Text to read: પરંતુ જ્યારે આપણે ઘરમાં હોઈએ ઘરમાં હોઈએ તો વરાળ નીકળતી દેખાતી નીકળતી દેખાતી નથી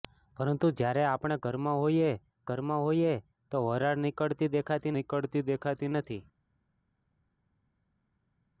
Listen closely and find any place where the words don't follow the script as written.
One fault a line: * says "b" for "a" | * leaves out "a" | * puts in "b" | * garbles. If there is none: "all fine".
all fine